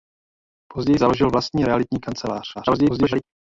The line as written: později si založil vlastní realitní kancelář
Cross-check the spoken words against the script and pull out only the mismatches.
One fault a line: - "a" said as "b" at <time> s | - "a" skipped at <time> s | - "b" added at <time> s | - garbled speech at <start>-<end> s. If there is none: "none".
- "si" skipped at 1.0 s
- garbled speech at 2.5-3.2 s